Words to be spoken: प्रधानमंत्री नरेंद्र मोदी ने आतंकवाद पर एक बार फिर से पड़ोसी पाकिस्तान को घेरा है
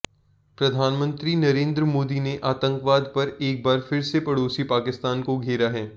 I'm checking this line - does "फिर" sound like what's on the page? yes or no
yes